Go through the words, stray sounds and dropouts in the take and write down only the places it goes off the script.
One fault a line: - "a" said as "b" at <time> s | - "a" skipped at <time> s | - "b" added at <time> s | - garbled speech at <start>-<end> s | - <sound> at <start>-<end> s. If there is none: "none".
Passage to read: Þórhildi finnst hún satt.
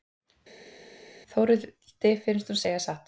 - "segja" added at 2.6 s